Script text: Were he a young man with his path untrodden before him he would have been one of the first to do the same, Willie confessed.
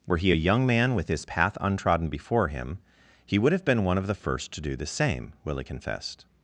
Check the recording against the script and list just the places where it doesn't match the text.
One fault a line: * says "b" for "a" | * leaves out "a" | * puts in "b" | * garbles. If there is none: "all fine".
all fine